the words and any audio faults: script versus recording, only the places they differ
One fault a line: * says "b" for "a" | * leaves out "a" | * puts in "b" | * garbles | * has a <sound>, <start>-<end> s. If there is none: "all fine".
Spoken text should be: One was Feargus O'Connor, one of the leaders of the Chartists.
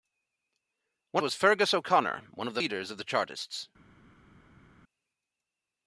all fine